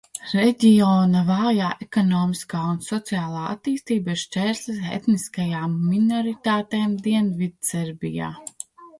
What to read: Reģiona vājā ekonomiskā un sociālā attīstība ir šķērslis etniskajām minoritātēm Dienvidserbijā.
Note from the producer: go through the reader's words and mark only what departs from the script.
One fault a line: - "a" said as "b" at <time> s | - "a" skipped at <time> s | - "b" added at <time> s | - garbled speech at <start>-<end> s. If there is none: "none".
none